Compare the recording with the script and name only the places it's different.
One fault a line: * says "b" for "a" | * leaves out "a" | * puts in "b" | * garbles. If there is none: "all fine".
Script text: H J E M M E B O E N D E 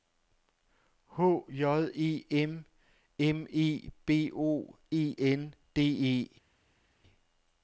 all fine